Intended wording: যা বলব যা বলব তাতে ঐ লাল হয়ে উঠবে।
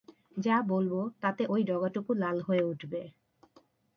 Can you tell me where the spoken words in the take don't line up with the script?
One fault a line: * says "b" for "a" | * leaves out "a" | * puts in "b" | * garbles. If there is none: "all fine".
* leaves out "যা বলব"
* puts in "ডগাটুকু"